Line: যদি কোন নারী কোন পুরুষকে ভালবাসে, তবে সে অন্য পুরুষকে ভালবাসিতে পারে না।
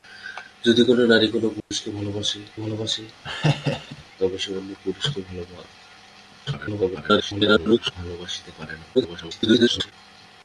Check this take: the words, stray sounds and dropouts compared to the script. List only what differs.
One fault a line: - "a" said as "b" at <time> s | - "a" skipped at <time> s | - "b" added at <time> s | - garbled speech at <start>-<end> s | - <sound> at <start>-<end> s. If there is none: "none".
- dropout at 1.6-1.7 s
- "ভালবাসে" added at 2.6 s
- laugh at 3.2-4.0 s
- garbled speech at 6.5-7.9 s
- garbled speech at 8.9-9.9 s